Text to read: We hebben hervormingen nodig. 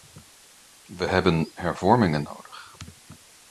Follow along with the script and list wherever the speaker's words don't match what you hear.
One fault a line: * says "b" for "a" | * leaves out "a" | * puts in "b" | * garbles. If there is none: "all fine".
all fine